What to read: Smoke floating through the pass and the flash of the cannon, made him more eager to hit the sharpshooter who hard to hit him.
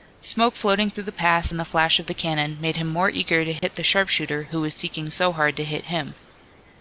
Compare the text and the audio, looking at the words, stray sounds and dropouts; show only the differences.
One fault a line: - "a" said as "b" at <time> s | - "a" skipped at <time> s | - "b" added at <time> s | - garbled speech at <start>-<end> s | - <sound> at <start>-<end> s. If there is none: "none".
- dropout at 3.6-3.6 s
- "was seeking so" added at 4.6 s